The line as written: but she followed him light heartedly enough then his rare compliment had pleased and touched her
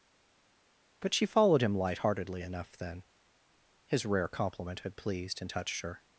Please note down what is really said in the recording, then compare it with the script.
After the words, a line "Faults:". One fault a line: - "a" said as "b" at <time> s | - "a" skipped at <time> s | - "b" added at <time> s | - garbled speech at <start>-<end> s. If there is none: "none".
but she followed him light heartedly enough then his rare compliment had pleased and touched her
Faults:
none